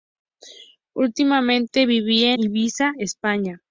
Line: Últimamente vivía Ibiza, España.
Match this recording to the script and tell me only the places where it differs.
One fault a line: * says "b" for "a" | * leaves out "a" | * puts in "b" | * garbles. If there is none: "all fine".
all fine